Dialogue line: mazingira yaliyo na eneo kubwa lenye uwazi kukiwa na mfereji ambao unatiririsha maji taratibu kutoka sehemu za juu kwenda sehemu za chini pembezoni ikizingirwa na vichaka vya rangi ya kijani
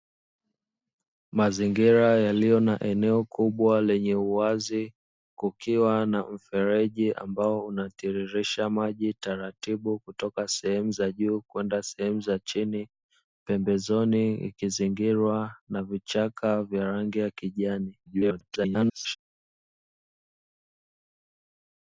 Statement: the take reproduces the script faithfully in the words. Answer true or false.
false